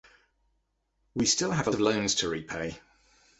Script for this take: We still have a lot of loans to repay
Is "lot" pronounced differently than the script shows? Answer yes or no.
yes